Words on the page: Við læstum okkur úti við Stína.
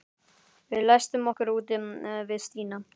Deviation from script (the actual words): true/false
false